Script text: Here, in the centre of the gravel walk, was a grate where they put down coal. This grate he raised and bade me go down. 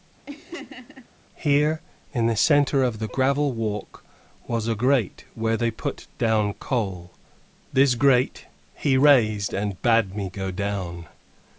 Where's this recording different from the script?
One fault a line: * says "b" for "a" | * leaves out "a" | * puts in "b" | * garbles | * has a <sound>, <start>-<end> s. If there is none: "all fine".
* has a laugh, 0.3-1.1 s